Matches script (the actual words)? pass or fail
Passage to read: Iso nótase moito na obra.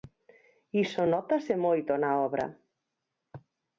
pass